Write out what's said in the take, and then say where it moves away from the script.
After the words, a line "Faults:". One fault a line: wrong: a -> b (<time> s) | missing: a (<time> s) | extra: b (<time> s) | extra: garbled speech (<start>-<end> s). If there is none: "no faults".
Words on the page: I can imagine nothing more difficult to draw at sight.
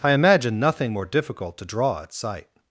I imagine nothing more difficult to draw at sight.
Faults:
missing: can (0.1 s)